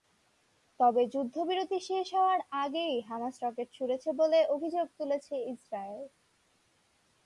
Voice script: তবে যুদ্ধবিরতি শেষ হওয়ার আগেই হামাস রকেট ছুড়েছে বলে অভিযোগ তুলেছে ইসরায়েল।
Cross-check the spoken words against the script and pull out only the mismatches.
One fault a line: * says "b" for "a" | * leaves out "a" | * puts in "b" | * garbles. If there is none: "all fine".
all fine